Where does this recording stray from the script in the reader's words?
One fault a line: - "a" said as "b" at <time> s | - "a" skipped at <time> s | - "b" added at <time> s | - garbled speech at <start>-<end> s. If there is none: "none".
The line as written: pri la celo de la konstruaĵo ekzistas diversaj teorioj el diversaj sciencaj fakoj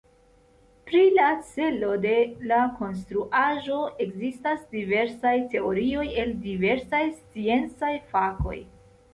none